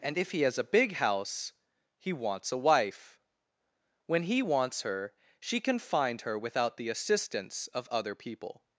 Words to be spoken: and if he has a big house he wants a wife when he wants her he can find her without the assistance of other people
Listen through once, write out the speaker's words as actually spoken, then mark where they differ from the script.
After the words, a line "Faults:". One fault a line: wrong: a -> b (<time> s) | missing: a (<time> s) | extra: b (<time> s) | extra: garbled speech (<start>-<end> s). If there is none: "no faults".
and if he has a big house he wants a wife when he wants her she can find her without the assistance of other people
Faults:
wrong: he -> she (5.4 s)